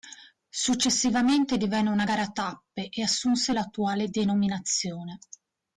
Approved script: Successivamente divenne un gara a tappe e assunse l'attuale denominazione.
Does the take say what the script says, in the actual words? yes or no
no